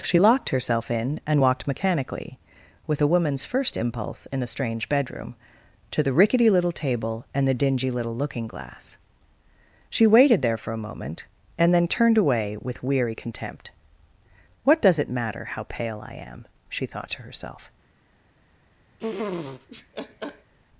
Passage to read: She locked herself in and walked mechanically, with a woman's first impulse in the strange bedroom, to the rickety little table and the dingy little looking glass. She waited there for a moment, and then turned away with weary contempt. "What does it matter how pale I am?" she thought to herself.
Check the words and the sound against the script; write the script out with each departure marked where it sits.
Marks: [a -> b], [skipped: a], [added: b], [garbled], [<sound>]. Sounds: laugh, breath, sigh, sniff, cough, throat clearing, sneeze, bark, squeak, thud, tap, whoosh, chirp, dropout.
She locked herself in and walked mechanically, with a woman's first impulse in the strange bedroom, to the rickety little table and the dingy little looking glass. She waited there for a moment, and then turned away with weary contempt. "What does it matter how pale I am?" she thought to herself. [laugh]